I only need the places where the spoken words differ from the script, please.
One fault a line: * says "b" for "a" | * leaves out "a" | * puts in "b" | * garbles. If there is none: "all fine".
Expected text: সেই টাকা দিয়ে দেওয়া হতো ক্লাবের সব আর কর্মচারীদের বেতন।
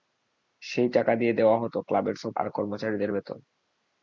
all fine